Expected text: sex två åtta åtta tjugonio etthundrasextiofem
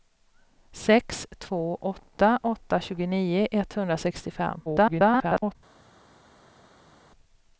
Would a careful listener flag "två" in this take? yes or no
no